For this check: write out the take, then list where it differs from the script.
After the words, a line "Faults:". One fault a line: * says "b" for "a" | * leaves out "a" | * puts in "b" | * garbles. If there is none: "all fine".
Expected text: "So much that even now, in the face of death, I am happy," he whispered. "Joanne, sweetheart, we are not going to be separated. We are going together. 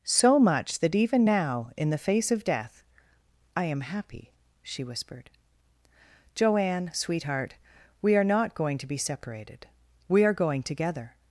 "So much that even now, in the face of death, I am happy," she whispered. "Joanne, sweetheart, we are not going to be separated. We are going together.
Faults:
* says "she" for "he"